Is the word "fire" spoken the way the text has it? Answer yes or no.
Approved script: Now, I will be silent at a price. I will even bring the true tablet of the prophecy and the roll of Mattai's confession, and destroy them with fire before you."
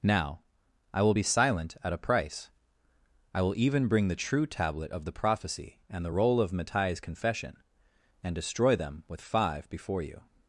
no